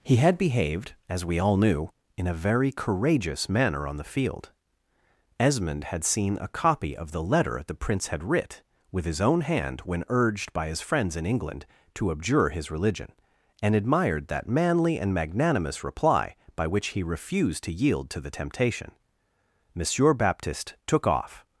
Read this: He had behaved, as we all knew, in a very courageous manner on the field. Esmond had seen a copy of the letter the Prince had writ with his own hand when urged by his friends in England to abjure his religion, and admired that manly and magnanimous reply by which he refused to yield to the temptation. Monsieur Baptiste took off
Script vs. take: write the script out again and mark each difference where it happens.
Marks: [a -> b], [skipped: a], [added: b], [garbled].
He had behaved, as we all knew, in a very courageous manner on the field. Esmond had seen a copy of the letter the Prince had writ with his own hand when urged by his friends in England to abjure his religion, and admired that manly and magnanimous reply by which he refused to yield to the temptation. Monsieur Baptiste took off